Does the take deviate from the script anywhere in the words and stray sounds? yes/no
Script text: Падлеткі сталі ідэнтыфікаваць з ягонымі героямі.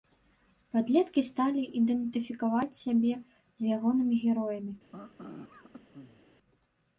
yes